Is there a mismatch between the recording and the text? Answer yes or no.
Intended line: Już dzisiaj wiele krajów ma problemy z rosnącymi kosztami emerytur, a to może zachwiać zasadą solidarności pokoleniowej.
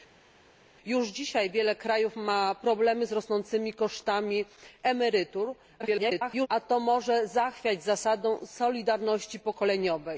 yes